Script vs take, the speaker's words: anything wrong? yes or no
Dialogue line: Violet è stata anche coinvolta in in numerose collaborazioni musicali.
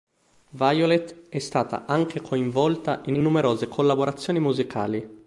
no